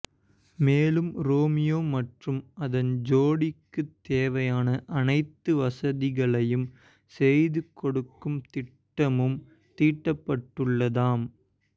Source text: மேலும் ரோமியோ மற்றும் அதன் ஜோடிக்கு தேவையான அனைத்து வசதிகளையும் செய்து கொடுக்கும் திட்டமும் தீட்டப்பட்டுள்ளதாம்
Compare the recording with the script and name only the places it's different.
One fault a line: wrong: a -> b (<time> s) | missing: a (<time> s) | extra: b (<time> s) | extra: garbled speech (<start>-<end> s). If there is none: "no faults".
no faults